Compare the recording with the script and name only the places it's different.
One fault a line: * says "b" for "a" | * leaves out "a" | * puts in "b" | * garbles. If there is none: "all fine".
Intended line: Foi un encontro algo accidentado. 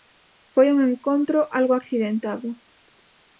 all fine